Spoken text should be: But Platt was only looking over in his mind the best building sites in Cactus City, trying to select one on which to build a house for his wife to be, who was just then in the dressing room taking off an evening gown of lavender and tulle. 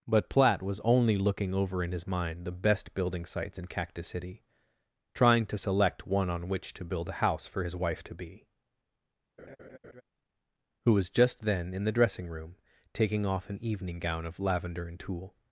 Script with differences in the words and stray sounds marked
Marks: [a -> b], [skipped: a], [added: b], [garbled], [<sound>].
But Platt was only looking over in his mind the best building sites in Cactus City, trying to select one on which to build a house for his wife to be, [laugh] who was just then in the dressing room taking off an evening gown of lavender and tulle.